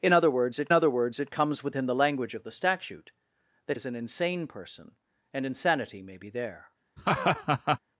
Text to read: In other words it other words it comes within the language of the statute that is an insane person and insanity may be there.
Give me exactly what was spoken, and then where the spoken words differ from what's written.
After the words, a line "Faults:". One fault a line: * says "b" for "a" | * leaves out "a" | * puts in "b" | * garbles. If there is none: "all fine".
In other words it other words it comes within the language of the statute that is an insane person and insanity may be there.
Faults:
all fine